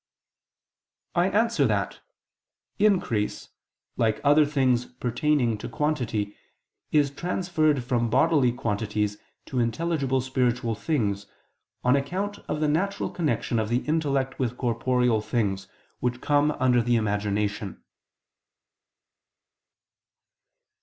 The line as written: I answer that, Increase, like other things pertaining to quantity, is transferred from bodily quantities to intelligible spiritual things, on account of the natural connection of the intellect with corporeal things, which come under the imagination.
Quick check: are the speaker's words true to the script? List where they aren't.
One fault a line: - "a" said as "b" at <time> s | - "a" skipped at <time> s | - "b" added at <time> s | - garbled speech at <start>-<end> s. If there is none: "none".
none